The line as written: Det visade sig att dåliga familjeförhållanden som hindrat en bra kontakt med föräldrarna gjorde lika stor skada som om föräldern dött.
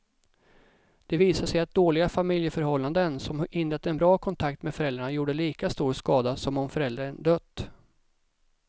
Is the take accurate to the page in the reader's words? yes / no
yes